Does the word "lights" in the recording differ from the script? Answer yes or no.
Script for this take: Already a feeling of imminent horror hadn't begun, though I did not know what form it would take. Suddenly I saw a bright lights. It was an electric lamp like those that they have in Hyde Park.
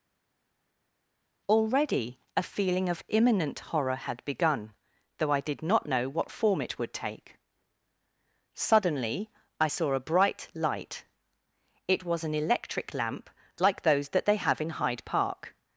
yes